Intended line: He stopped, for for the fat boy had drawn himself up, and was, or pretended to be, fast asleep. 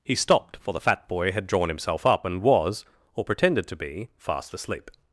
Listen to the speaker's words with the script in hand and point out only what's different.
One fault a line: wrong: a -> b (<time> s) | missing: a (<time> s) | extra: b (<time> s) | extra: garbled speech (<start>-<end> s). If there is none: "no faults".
missing: for (0.7 s)